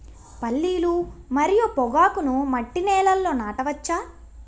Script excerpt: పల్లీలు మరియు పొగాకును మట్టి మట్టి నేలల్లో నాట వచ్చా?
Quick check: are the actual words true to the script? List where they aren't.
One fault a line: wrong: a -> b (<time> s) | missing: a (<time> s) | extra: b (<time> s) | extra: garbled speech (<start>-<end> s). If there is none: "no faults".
missing: మట్టి (2.8 s)